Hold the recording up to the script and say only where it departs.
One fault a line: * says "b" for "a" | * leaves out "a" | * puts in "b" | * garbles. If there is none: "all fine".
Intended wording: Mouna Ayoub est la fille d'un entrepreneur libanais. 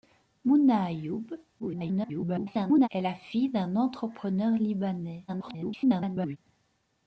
* garbles
* garbles